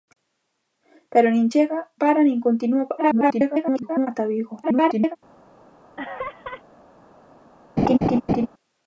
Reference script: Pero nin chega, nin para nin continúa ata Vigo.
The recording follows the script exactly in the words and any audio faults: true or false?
false